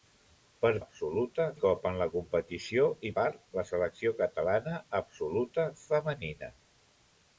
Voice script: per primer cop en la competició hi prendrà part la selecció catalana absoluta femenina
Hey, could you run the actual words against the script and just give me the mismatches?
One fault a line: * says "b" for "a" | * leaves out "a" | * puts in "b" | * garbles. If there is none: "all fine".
* says "absoluta" for "primer"
* leaves out "prendrà"